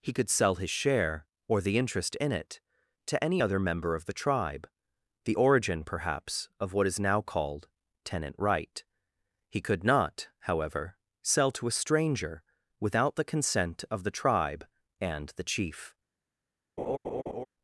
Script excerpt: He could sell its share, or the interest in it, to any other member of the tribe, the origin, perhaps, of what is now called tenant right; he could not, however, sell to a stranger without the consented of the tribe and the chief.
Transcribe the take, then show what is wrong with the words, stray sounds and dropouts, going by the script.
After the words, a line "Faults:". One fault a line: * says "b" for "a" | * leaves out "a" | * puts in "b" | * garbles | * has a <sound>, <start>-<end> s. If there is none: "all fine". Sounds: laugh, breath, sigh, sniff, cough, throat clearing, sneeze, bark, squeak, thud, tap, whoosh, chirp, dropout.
He could sell his share, or the interest in it, to any other member of the tribe, the origin, perhaps, of what is now called tenant right; he could not, however, sell to a stranger without the consent of the tribe and the chief.
Faults:
* says "his" for "its"
* says "consent" for "consented"
* has a laugh, 16.8-17.5 s